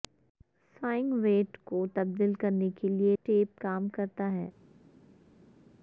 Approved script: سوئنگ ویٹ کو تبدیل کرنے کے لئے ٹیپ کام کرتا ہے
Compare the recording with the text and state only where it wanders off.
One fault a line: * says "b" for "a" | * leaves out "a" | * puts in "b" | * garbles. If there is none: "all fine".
all fine